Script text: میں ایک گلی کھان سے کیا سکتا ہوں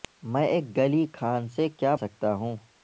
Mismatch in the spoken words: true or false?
false